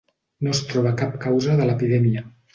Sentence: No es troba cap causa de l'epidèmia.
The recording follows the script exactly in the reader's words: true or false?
true